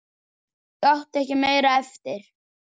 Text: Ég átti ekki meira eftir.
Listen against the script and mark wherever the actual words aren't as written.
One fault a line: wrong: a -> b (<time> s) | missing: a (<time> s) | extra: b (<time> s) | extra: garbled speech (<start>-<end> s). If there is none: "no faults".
no faults